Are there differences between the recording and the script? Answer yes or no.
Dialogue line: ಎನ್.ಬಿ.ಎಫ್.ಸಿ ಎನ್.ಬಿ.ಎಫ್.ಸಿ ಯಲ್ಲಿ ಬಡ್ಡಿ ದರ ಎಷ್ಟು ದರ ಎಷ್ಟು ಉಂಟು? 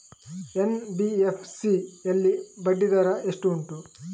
yes